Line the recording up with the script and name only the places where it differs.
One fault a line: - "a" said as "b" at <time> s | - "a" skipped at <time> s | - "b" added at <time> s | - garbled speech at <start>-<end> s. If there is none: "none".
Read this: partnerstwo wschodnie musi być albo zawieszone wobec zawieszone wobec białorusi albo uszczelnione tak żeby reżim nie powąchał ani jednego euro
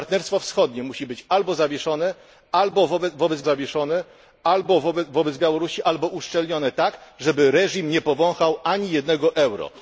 none